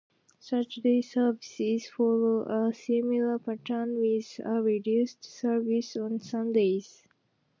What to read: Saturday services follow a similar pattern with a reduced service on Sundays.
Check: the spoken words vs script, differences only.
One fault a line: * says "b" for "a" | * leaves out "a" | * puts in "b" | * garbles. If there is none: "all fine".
all fine